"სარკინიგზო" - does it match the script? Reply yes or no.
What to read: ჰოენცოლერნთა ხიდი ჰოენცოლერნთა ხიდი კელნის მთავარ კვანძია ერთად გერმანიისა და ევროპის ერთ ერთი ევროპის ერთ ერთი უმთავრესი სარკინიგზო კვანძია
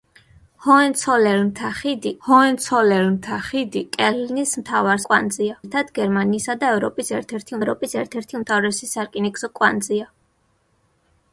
yes